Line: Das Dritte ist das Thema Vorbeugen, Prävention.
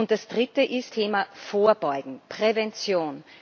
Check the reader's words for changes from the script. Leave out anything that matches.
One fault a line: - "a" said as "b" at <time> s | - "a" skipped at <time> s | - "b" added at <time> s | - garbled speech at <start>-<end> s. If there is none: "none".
- "das" skipped at 0.9 s